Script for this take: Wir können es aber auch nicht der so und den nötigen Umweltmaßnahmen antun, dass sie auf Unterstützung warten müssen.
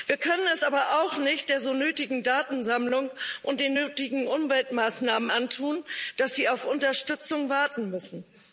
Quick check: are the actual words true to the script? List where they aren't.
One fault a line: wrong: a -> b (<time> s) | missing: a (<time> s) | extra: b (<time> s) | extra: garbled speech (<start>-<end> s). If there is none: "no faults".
extra: nötigen Datensammlung (1.7 s)